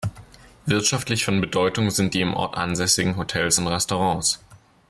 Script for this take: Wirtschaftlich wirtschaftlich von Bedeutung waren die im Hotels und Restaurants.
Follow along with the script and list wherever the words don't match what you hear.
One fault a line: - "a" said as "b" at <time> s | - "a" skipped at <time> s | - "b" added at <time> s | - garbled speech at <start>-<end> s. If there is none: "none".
- "wirtschaftlich" skipped at 1.2 s
- "waren" said as "sind" at 1.9 s
- "Ort ansässigen" added at 2.3 s